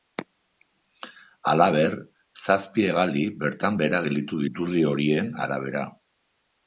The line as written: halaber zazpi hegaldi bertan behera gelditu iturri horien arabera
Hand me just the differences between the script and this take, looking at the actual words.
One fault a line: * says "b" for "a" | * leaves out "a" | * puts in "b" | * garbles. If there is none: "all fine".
all fine